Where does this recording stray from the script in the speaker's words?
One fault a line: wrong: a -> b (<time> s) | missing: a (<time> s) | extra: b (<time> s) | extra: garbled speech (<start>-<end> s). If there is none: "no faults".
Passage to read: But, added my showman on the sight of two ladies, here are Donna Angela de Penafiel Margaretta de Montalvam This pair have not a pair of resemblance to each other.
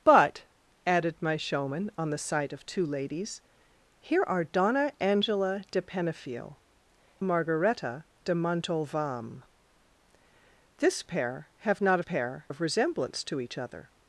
no faults